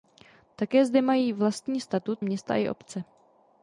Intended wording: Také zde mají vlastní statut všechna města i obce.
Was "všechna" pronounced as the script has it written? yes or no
no